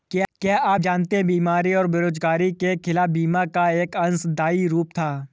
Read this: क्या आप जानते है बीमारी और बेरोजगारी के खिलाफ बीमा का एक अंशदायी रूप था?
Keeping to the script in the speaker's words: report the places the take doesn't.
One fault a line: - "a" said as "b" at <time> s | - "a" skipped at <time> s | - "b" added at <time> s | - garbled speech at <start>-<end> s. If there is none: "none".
none